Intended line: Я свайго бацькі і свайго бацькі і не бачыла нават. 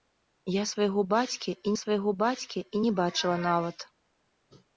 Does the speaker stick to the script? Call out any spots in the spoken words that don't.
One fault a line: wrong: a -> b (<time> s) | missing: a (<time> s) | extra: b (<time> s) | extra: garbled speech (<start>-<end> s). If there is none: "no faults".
no faults